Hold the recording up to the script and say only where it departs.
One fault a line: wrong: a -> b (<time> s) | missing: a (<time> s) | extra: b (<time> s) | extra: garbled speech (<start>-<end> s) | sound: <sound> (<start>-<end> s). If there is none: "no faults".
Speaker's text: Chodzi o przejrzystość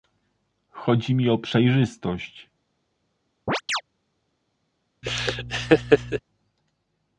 extra: mi (1.1 s)
sound: chirp (3.5-3.8 s)
sound: laugh (5.0-6.2 s)